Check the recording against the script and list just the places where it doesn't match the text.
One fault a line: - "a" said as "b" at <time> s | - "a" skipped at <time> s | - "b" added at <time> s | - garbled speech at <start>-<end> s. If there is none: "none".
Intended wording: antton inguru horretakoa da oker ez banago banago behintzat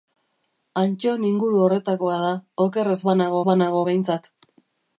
none